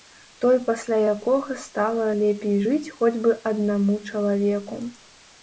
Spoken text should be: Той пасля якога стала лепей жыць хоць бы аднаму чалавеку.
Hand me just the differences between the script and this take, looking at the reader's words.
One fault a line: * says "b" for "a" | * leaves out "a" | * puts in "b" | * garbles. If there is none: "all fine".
all fine